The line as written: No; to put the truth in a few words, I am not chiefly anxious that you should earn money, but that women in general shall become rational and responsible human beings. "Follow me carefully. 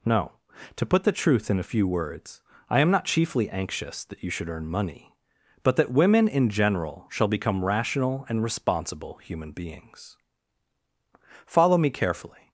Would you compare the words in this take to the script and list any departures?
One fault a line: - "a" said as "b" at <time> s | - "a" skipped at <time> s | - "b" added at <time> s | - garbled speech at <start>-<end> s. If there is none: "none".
none